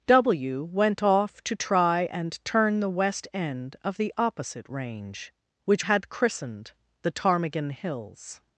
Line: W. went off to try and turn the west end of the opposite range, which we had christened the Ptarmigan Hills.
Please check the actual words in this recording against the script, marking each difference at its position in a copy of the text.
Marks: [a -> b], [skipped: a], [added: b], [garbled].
W. went off to try and turn the west end of the opposite range, which [skipped: we] had christened the Ptarmigan Hills.